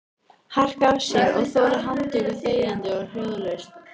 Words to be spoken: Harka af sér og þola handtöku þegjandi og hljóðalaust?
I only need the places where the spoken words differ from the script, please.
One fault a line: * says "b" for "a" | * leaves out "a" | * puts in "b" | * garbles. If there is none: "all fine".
all fine